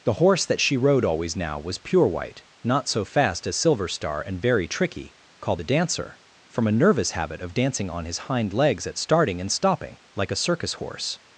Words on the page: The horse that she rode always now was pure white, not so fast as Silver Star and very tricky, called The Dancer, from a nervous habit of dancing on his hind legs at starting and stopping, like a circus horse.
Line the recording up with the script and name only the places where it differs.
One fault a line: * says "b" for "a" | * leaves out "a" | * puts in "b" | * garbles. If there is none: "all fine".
all fine